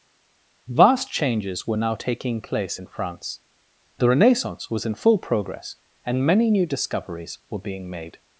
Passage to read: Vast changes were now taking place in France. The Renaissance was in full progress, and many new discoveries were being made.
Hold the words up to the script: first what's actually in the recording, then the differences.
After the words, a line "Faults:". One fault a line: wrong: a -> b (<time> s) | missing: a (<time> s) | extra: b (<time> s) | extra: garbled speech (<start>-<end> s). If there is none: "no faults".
Vast changes were now taking place in France. The Renaissance was in full progress, and many new discoveries were being made.
Faults:
no faults